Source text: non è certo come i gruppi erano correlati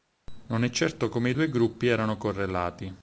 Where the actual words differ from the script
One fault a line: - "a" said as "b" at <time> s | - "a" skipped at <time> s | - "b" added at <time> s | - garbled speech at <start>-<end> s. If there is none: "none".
- "due" added at 1.3 s